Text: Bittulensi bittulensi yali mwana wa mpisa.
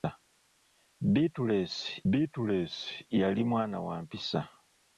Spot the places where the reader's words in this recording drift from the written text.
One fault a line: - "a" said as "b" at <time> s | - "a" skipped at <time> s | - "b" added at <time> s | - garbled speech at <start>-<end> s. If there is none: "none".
none